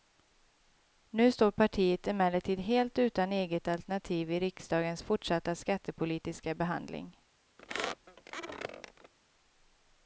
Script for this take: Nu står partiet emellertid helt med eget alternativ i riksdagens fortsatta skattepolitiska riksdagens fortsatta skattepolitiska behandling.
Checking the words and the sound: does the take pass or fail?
fail